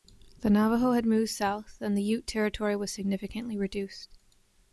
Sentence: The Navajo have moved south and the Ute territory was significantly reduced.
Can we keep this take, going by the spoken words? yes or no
no